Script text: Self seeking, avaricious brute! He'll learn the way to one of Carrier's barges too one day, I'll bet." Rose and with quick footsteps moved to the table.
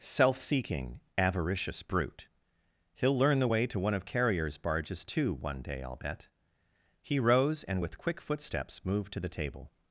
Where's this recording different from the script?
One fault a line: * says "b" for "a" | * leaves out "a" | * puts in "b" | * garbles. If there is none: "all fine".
* puts in "He"